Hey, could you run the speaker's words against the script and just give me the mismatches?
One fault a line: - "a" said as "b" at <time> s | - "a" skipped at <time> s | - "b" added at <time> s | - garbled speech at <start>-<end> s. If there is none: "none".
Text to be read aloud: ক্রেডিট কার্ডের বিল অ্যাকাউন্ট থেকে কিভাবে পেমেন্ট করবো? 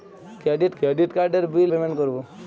- "ক্রেডিট" added at 0.8 s
- "অ্যাকাউন্ট থেকে কিভাবে" skipped at 1.7 s